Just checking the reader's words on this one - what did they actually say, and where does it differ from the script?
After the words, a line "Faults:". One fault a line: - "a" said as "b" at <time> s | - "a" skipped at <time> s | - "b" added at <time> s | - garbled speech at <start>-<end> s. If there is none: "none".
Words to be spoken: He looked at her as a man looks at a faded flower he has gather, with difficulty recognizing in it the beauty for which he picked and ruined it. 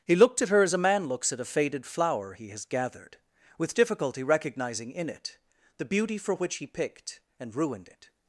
He looked at her as a man looks at a faded flower he has gathered, with difficulty recognizing in it the beauty for which he picked and ruined it.
Faults:
- "gather" said as "gathered" at 2.7 s